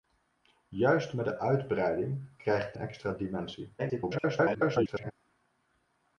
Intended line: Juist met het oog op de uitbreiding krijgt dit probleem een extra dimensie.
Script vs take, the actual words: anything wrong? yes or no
yes